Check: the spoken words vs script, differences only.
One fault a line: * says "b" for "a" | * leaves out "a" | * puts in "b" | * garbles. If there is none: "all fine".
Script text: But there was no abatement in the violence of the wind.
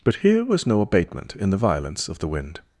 * says "here" for "there"